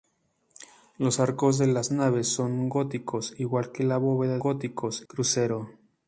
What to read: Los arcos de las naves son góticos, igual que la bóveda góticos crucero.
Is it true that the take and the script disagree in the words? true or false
false